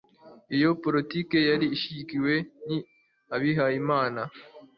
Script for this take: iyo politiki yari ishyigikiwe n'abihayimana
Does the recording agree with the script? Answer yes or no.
yes